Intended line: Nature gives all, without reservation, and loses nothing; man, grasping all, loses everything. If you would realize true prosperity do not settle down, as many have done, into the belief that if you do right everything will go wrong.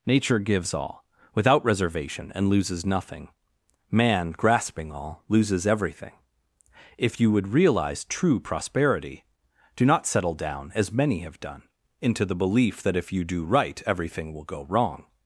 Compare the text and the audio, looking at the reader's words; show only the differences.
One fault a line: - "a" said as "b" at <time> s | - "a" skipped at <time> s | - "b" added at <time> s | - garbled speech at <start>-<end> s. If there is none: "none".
none